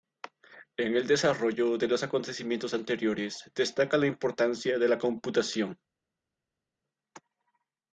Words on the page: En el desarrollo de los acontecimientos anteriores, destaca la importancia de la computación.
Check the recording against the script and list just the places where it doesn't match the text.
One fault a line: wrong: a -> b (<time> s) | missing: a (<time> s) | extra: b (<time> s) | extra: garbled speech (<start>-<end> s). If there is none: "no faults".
no faults